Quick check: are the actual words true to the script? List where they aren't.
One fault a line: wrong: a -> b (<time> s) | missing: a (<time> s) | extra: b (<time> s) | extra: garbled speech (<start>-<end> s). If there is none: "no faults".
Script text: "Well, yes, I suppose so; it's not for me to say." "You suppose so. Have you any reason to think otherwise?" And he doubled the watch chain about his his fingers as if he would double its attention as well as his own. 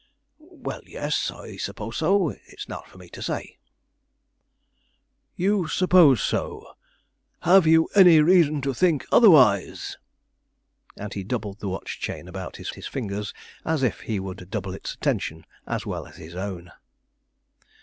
no faults